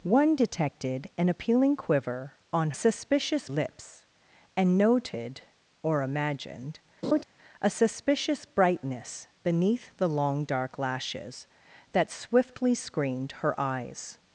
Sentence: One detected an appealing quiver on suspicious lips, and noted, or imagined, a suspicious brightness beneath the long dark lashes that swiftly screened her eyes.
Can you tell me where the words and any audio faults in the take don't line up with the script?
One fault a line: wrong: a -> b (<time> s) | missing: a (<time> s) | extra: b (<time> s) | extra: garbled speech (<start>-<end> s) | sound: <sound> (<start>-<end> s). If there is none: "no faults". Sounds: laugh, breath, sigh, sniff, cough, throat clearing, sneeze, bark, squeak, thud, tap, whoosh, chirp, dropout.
sound: laugh (7.0-7.2 s)